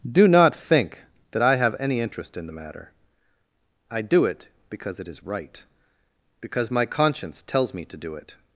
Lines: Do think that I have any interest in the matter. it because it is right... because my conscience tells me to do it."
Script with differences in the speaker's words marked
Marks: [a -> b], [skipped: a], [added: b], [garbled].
Do [added: not] think that I have any interest in the matter. [added: I do] it because it is right... because my conscience tells me to do it."